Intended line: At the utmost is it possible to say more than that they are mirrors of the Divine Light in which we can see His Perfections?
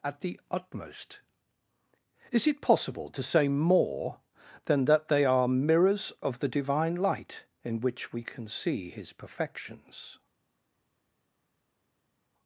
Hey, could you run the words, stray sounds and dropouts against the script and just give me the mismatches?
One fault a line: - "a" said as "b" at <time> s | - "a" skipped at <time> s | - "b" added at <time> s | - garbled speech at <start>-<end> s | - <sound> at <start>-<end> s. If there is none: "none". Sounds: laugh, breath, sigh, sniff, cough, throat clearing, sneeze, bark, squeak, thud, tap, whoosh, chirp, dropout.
none